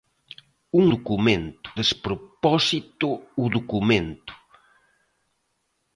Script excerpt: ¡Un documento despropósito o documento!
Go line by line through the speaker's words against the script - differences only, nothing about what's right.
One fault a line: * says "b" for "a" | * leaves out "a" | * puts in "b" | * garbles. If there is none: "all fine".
all fine